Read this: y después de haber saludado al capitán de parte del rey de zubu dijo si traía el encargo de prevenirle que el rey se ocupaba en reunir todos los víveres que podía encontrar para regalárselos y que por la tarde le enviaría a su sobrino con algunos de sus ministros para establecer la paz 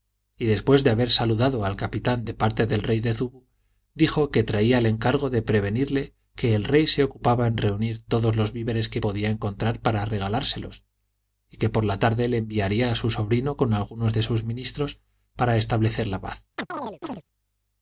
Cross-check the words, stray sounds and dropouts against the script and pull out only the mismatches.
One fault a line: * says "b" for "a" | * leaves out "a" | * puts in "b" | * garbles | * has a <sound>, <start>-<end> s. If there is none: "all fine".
* says "que" for "si"
* has a chirp, 16.6-17.2 s